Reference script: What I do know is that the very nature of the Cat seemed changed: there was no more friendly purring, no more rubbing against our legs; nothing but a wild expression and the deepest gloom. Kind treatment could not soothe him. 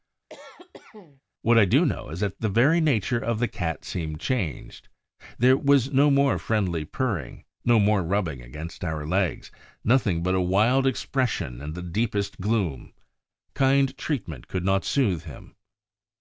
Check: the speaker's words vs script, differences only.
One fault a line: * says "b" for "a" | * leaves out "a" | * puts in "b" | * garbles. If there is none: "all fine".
all fine